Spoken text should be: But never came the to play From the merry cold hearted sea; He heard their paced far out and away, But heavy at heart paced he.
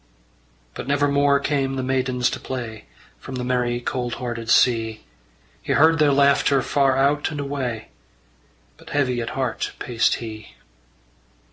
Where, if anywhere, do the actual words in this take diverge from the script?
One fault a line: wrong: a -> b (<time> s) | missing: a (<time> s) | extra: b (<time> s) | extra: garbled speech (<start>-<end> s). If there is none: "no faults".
extra: more (1.1 s)
extra: maidens (1.8 s)
wrong: paced -> laughter (6.1 s)